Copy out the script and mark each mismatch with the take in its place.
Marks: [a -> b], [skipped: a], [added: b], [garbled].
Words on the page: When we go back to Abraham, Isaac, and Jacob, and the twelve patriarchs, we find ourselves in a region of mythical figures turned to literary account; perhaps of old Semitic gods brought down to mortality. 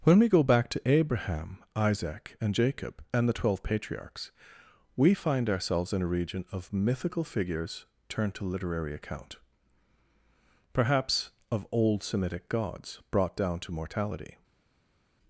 When we go back to Abraham, Isaac, and Jacob, and the twelve patriarchs, we find ourselves in a region of mythical figures turned to literary account; perhaps of old Semitic gods brought down to mortality.